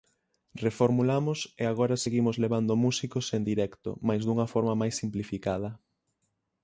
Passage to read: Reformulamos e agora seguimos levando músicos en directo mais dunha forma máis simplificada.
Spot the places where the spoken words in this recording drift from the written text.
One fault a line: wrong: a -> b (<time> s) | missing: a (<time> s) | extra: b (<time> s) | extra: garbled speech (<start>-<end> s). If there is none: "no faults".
no faults